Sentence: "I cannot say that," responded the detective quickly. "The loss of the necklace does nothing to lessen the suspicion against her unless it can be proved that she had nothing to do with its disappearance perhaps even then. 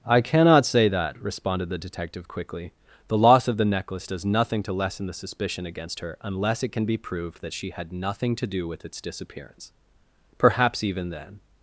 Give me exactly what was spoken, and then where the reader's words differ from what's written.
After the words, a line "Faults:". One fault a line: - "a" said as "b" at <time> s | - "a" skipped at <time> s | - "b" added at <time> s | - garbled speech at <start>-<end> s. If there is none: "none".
"I cannot say that," responded the detective quickly. "The loss of the necklace does nothing to lessen the suspicion against her unless it can be proved that she had nothing to do with its disappearance perhaps even then.
Faults:
none